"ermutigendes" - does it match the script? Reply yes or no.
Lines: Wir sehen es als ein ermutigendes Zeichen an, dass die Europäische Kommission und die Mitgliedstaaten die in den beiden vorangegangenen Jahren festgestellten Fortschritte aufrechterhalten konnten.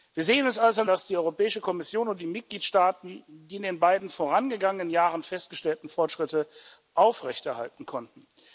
no